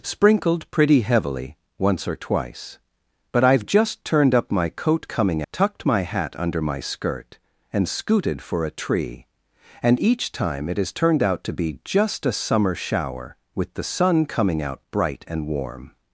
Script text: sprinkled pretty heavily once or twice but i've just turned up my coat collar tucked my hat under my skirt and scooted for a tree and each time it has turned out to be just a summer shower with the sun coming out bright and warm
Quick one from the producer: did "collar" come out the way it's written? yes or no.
no